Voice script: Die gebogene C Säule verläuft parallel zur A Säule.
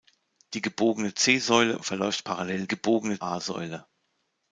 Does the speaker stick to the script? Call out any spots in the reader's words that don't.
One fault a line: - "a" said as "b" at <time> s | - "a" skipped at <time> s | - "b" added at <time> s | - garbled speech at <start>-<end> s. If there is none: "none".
- "zur" said as "gebogene" at 2.7 s